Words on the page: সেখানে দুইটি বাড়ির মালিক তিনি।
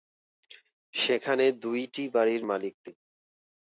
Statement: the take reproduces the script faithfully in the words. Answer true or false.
true